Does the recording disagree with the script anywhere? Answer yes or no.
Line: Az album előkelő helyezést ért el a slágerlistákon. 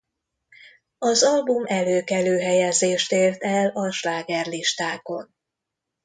no